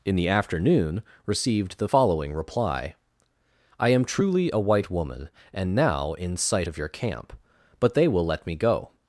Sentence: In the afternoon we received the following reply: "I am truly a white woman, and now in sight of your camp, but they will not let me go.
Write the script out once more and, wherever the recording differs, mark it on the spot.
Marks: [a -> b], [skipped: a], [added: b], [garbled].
In the afternoon [skipped: we] received the following reply: "I am truly a white woman, and now in sight of your camp, but they will [skipped: not] let me go.